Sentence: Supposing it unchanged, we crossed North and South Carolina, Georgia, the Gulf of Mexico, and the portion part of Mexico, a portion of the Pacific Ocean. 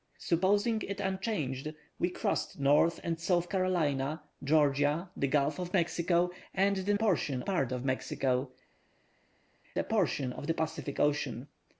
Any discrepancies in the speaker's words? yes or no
no